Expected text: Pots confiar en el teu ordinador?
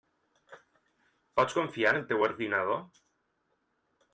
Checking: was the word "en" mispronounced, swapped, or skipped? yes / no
no